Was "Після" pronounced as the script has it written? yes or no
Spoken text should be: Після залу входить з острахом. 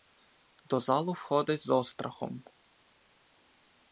no